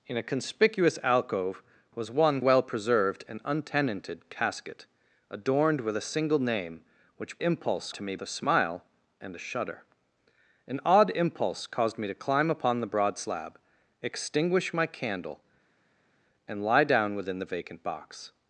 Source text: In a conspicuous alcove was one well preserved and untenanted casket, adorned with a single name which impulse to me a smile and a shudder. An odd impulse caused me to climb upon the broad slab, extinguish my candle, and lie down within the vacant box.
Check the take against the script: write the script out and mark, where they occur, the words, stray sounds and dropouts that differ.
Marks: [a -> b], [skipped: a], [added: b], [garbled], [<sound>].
In a conspicuous alcove was one well preserved and untenanted casket, adorned with a single name which impulse to me a smile and a shudder. An odd impulse caused me to climb upon the broad slab, extinguish my candle, and lie down within the vacant box.